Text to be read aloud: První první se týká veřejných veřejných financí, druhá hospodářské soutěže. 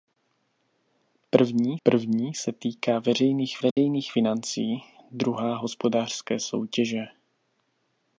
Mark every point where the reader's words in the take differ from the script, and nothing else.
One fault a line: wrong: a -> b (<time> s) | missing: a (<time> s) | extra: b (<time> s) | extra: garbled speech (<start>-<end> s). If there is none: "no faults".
no faults